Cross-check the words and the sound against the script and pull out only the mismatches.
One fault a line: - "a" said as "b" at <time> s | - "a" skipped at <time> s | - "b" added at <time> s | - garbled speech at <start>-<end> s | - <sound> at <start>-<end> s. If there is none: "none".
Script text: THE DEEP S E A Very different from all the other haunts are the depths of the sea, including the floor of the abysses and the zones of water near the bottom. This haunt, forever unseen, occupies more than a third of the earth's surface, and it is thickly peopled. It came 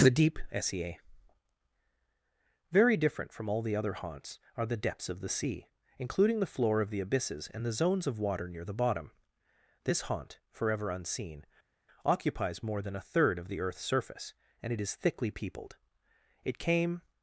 none